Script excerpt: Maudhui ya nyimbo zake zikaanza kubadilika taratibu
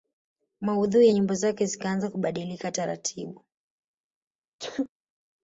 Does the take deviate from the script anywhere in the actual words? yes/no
no